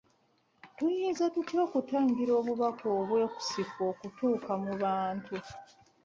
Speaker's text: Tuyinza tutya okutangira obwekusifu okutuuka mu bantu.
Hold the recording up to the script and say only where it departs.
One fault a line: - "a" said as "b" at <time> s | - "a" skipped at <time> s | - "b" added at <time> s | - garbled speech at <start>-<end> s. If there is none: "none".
- "obubaka" added at 2.4 s